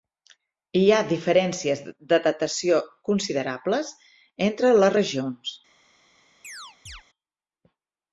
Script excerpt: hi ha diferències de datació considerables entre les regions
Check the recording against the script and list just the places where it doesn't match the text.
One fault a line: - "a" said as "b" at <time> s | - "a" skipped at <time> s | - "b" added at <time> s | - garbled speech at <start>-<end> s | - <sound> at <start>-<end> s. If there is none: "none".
- chirp at 6.4-7.0 s